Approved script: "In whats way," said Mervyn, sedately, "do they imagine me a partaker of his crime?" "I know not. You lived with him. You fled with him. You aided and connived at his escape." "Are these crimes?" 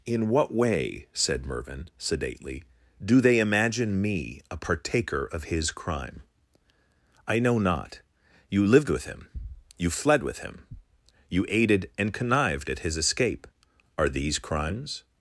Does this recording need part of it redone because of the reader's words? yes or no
yes